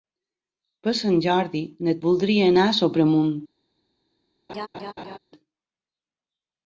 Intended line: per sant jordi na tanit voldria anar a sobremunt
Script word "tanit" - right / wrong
wrong